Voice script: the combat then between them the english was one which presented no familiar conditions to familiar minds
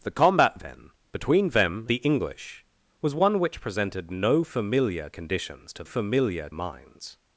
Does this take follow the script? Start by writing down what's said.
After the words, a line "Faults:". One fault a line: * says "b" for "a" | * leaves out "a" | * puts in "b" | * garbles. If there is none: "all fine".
the combat then between them the english was one which presented no familiar conditions to familiar minds
Faults:
all fine